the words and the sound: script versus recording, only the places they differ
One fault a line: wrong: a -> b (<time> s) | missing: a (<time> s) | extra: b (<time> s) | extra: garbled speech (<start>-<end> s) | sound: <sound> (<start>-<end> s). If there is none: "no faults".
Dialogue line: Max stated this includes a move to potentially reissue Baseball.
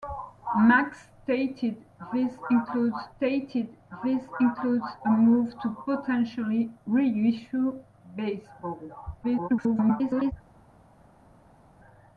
extra: stated this includes (3.1 s)
extra: garbled speech (9.2-10.3 s)